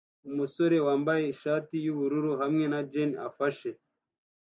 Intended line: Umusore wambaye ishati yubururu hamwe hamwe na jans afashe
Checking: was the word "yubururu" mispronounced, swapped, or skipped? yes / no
no